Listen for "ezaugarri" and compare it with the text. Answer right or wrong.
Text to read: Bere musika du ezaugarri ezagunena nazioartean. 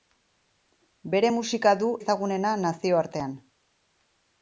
wrong